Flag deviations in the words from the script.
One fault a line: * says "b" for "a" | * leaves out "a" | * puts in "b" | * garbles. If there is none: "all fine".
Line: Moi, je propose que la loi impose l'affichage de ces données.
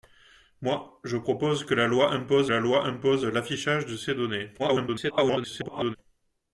* puts in "la loi impose"
* garbles